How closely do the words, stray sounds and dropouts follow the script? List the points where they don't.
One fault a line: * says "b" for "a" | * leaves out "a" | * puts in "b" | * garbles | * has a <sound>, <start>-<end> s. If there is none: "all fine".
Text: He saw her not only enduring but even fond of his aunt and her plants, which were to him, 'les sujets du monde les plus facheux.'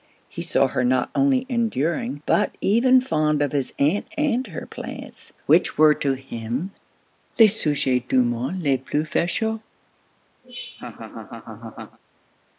* has a laugh, 10.4-12.0 s